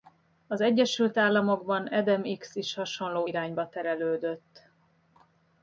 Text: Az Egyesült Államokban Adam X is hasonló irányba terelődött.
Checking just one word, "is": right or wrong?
right